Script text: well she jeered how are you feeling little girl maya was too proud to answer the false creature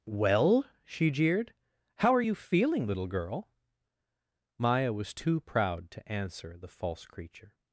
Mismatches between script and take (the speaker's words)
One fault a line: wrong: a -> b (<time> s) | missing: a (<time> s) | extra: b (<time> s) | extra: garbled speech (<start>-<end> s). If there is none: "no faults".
no faults